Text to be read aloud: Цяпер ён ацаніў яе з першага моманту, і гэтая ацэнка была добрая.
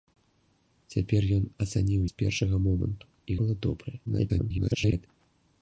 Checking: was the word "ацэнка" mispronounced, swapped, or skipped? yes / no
yes